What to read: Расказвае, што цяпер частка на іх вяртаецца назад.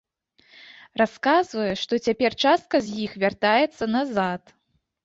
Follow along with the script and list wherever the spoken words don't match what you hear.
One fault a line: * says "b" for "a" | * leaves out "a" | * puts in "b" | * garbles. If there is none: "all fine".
* says "з" for "на"